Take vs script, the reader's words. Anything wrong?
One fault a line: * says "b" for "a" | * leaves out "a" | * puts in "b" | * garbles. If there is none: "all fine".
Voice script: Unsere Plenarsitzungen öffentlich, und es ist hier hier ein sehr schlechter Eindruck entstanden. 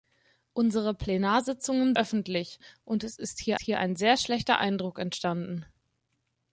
all fine